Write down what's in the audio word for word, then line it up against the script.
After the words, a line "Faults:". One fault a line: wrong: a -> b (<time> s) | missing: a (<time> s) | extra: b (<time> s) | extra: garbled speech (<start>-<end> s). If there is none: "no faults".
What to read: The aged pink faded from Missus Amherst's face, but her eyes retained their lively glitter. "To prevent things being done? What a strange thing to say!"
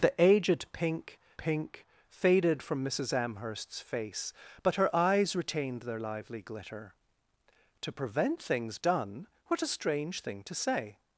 The aged pink pink faded from Missus Amherst's face, but her eyes retained their lively glitter. "To prevent things done? What a strange thing to say!"
Faults:
extra: pink (1.4 s)
missing: being (8.8 s)